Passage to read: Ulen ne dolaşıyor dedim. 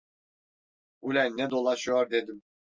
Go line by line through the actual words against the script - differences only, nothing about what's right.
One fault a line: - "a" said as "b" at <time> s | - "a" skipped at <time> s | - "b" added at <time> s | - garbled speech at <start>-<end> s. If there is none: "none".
none